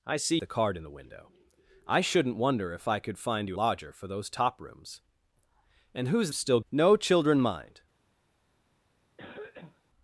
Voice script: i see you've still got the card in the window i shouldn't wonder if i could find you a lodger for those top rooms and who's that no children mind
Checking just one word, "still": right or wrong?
wrong